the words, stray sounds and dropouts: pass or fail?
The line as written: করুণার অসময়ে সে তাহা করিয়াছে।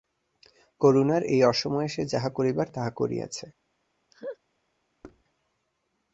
fail